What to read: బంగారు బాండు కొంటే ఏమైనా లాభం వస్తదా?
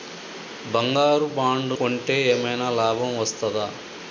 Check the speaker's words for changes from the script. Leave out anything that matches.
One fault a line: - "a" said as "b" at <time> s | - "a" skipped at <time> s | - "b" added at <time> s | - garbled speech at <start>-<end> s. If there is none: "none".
none